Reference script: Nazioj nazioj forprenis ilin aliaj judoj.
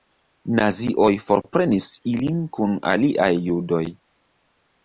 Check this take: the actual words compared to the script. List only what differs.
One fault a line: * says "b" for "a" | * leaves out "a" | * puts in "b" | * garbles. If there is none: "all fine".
* leaves out "nazioj"
* puts in "kun"